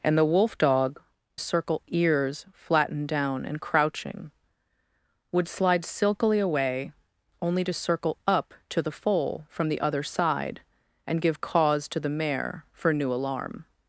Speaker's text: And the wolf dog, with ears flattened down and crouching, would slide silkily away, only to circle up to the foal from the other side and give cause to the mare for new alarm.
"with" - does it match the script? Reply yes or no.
no